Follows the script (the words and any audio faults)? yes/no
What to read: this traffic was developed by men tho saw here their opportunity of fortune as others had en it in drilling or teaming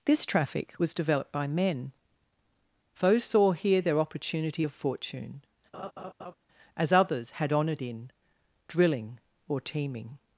no